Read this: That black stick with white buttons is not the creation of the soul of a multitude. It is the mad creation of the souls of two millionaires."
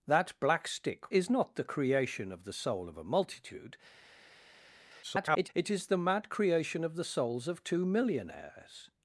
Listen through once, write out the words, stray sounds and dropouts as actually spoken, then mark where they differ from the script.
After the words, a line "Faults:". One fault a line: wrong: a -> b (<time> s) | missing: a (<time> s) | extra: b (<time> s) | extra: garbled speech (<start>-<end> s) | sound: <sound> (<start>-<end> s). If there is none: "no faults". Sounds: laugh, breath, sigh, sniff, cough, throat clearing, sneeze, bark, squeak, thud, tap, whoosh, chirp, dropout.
That black stick is not the creation of the soul of a multitude. [garbled] It is the mad creation of the souls of two millionaires."
Faults:
missing: with white buttons (1.1 s)
extra: garbled speech (5.0-5.5 s)